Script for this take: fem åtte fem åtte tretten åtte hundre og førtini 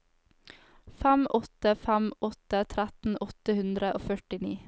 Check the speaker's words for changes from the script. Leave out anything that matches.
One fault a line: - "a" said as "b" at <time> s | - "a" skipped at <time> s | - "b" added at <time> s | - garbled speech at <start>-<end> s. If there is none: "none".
none